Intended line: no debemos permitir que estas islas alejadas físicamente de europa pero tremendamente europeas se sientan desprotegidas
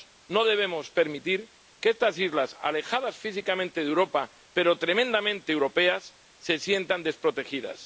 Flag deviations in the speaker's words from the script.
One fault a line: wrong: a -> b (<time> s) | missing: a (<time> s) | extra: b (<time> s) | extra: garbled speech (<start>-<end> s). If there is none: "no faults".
no faults